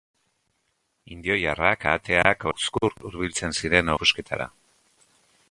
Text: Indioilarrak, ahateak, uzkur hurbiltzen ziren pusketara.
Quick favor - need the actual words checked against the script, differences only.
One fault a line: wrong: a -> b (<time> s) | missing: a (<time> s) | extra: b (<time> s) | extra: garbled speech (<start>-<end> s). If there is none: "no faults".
no faults